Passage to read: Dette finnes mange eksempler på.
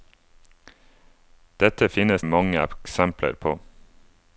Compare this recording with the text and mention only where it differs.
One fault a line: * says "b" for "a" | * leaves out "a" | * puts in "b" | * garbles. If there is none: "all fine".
all fine